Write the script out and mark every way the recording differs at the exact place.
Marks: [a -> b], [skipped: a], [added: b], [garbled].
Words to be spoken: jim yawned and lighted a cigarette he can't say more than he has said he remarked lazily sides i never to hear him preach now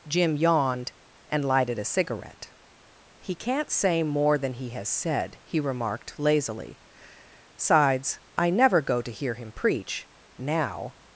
jim yawned and lighted a cigarette he can't say more than he has said he remarked lazily sides i never [added: go] to hear him preach now